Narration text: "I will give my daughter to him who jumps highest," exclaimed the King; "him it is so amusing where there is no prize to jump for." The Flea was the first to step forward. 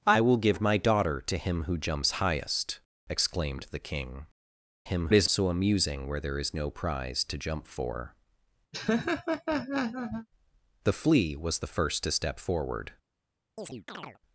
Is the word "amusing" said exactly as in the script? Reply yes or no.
yes